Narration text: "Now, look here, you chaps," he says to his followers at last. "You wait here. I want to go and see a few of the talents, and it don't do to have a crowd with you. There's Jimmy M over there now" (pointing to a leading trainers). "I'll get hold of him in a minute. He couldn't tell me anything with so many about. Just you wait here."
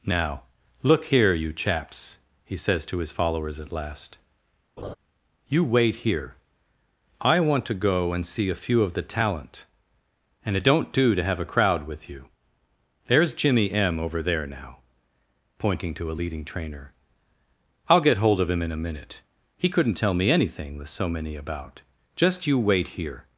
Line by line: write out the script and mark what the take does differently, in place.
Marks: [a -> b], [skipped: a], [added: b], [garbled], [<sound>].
"Now, look here, you chaps," he says to his followers at last. [laugh] "You wait here. I want to go and see a few of the [talents, -> talent] and it don't do to have a crowd with you. There's Jimmy M over there now" (pointing to a leading [trainers). -> trainer] "I'll get hold of him in a minute. He couldn't tell me anything with so many about. Just you wait here."